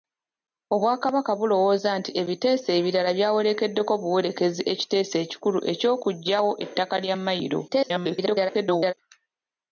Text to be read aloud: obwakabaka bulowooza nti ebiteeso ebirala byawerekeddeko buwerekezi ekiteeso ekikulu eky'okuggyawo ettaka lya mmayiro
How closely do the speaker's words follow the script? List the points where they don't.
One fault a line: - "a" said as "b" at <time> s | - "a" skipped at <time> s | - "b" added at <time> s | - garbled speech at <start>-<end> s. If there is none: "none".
- garbled speech at 7.7-8.9 s